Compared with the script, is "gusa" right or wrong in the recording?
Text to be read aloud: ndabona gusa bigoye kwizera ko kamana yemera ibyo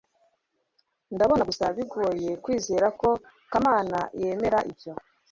right